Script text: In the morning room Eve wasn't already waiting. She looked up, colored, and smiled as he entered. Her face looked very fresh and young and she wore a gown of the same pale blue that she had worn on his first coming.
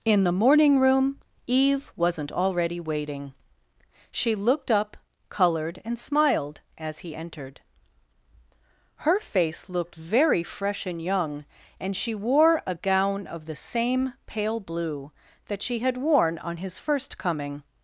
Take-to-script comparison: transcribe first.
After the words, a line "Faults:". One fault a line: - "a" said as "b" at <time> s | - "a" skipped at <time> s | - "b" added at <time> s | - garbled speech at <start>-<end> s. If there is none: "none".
In the morning room Eve wasn't already waiting. She looked up, colored, and smiled as he entered. Her face looked very fresh and young and she wore a gown of the same pale blue that she had worn on his first coming.
Faults:
none